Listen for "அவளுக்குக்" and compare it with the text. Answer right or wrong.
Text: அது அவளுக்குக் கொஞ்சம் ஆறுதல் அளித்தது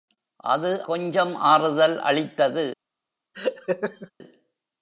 wrong